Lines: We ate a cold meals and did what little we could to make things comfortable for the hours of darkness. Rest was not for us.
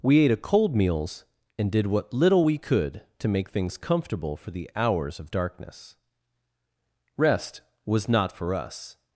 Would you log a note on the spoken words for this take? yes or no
no